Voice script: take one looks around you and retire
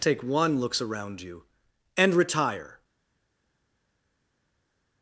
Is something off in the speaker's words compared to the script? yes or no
no